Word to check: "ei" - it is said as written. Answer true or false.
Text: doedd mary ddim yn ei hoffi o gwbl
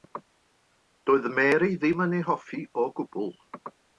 true